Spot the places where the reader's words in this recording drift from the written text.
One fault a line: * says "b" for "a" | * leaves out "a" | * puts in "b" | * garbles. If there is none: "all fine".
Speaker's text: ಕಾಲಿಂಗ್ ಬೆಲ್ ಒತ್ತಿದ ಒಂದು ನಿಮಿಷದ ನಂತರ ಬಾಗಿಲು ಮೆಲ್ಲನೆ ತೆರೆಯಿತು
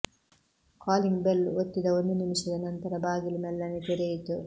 all fine